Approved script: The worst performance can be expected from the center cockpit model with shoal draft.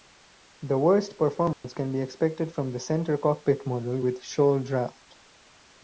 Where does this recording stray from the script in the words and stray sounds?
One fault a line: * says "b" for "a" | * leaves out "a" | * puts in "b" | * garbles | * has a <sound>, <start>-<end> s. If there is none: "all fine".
* has a dropout, 1.5-1.6 s